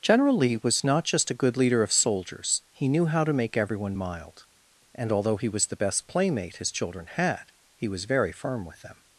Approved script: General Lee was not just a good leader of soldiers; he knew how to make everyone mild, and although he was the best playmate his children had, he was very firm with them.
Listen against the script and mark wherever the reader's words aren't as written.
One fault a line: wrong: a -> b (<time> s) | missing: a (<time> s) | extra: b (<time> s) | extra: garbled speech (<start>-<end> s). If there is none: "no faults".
no faults